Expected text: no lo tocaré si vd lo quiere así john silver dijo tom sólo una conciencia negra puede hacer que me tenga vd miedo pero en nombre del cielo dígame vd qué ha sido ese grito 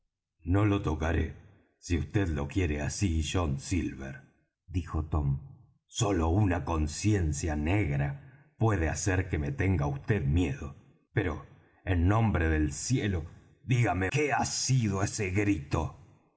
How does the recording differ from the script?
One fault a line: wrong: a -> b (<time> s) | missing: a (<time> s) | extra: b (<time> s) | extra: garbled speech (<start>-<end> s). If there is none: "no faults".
missing: vd (14.1 s)